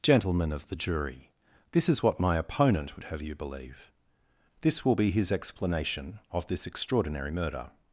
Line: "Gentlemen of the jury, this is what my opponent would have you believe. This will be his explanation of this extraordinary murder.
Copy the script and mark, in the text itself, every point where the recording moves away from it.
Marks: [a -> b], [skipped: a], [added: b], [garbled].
"Gentlemen of the jury, this is what my opponent would have you believe. This will be his explanation of this extraordinary murder.